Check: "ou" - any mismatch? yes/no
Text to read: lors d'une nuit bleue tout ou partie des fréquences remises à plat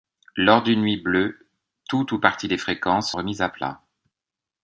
no